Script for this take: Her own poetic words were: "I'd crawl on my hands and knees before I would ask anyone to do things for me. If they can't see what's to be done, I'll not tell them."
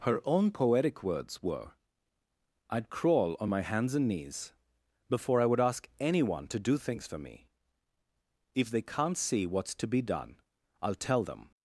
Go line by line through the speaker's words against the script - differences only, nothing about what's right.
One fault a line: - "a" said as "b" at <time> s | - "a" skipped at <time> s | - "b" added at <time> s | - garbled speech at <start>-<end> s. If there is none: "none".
- "not" skipped at 10.9 s